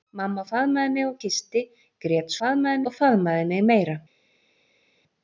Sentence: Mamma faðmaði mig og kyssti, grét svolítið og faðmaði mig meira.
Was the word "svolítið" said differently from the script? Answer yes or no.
yes